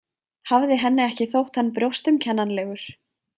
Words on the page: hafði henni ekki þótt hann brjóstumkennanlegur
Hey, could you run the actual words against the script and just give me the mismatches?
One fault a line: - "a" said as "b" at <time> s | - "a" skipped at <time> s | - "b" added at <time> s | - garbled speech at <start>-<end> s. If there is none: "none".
none